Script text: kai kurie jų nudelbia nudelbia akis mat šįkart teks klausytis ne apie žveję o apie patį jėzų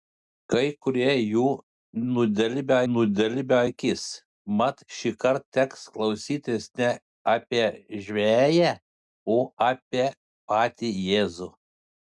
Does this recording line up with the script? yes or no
yes